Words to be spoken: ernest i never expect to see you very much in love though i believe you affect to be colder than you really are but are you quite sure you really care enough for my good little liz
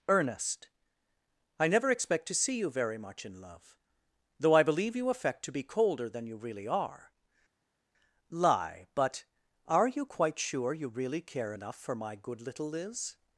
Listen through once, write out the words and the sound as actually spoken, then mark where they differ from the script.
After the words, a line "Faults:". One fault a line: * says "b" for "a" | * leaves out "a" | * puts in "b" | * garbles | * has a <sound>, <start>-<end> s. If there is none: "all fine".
ernest i never expect to see you very much in love though i believe you affect to be colder than you really are lie but are you quite sure you really care enough for my good little liz
Faults:
* puts in "lie"